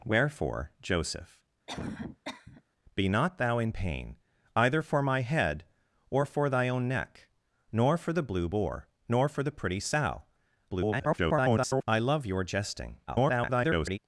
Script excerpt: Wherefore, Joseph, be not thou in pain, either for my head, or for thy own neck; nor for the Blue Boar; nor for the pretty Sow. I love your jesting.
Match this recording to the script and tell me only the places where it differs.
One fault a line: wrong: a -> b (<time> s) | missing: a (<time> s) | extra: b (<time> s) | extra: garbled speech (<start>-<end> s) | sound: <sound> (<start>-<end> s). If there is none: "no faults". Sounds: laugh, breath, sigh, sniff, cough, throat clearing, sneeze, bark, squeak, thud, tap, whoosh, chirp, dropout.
sound: cough (1.7-2.6 s)
extra: garbled speech (10.7-11.8 s)
extra: garbled speech (13.1-14.0 s)